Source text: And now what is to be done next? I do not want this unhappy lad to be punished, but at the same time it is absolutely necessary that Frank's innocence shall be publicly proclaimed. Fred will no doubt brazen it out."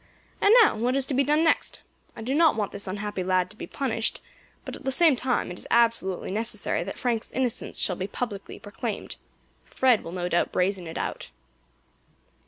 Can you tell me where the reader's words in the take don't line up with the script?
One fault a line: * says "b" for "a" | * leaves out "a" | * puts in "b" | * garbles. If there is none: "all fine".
all fine